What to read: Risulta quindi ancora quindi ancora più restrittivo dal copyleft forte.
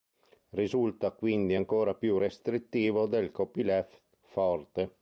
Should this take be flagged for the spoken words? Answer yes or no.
yes